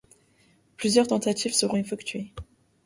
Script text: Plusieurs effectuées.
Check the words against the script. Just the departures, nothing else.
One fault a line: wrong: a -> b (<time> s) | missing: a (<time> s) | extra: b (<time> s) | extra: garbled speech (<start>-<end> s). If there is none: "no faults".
extra: tentatives seront (1.0 s)